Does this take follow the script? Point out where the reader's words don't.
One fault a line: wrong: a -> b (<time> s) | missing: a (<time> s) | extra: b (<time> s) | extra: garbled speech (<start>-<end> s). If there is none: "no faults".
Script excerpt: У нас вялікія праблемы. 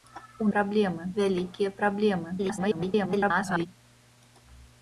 wrong: нас -> праблемы (0.6 s)
extra: garbled speech (2.4-3.7 s)